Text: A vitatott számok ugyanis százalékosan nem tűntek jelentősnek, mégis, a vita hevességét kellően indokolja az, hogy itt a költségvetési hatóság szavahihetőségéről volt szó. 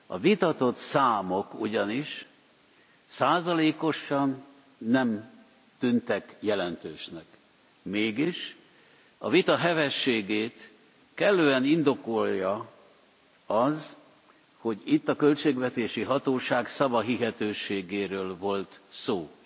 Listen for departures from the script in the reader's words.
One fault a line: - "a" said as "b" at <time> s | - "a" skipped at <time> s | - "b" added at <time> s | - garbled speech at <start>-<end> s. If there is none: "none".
none